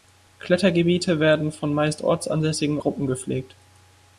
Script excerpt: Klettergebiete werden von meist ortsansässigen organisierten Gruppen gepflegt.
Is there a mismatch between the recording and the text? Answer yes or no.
yes